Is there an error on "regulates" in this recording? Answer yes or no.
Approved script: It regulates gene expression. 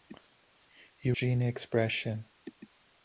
yes